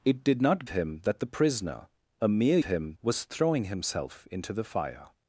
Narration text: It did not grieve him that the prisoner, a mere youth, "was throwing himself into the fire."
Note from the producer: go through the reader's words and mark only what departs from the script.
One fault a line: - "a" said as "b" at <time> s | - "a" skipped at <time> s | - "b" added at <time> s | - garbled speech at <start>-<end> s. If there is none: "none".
- "grieve" skipped at 0.7 s
- "youth" said as "him" at 2.6 s